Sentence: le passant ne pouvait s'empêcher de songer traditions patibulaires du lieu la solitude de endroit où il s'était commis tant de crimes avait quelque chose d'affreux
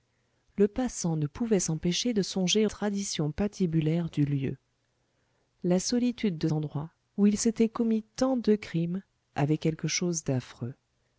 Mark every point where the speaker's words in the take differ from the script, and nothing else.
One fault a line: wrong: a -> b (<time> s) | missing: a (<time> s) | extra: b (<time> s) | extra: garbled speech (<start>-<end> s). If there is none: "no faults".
no faults